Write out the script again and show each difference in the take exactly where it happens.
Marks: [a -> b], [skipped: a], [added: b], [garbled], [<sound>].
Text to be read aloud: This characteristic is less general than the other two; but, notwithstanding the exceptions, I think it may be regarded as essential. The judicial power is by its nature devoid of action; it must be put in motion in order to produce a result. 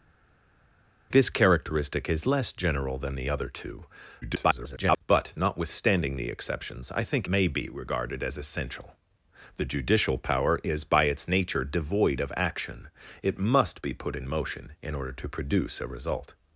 This characteristic is less general than the other two; [garbled] but, notwithstanding the exceptions, I think [skipped: it] may be regarded as essential. The judicial power is by its nature devoid of action; it must be put in motion in order to produce a result.